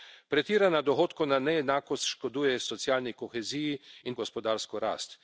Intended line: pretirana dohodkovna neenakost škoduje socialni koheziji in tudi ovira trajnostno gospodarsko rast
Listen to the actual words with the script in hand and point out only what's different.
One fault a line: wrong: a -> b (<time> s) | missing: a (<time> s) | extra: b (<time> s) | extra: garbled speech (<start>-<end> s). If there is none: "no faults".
missing: tudi ovira trajnostno (4.1 s)